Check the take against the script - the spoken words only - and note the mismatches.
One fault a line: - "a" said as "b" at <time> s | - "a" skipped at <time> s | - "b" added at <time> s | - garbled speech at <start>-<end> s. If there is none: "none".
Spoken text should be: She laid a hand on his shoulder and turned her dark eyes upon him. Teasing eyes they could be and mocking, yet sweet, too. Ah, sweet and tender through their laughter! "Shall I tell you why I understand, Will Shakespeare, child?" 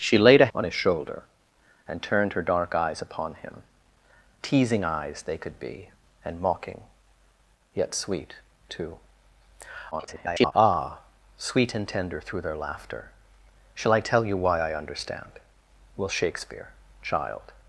- "hand" skipped at 0.5 s
- garbled speech at 9.9-10.5 s